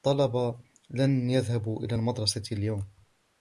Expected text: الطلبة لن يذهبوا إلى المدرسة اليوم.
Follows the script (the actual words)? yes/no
yes